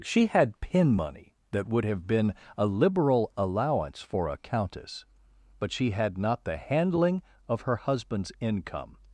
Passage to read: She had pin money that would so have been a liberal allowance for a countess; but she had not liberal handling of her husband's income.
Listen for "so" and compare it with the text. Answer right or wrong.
wrong